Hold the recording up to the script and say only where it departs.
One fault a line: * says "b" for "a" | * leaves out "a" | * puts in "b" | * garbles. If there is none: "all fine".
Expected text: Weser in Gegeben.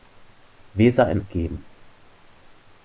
all fine